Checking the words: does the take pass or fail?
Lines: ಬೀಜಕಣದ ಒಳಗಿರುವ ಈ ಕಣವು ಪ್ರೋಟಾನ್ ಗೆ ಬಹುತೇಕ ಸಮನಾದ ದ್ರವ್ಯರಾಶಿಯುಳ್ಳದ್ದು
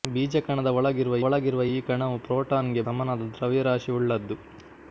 fail